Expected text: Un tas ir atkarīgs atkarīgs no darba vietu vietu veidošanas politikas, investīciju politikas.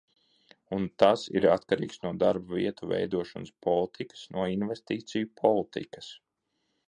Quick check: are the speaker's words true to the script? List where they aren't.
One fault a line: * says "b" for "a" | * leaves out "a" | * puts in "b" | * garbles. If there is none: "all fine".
* leaves out "atkarīgs"
* leaves out "vietu"
* puts in "no"